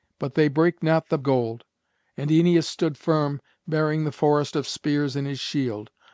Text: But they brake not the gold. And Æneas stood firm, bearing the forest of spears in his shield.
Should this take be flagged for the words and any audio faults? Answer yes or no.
no